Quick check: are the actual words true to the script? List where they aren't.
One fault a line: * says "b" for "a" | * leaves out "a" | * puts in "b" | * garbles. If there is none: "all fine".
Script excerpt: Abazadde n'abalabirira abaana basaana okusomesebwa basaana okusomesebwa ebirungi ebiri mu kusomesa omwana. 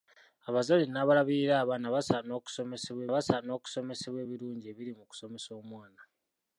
all fine